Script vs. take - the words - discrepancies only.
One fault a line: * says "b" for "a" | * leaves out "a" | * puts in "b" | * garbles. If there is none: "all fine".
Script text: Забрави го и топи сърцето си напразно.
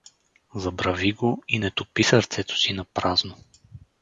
* puts in "не"